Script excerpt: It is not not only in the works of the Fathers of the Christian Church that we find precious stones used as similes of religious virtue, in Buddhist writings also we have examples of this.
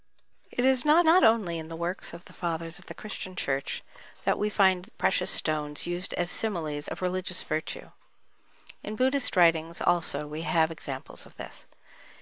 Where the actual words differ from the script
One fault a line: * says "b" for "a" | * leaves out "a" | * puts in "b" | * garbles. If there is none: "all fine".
all fine